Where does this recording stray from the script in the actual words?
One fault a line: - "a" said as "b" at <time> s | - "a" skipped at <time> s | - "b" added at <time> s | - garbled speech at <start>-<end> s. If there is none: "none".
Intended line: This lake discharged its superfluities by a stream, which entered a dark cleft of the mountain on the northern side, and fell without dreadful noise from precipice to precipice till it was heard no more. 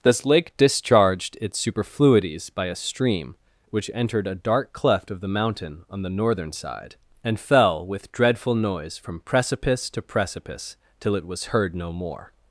- "without" said as "with" at 7.8 s